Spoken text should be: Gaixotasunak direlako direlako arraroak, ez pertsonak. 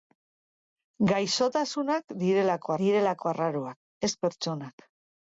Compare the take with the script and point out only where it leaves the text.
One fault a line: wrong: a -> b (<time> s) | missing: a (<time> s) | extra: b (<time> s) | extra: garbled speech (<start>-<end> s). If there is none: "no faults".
no faults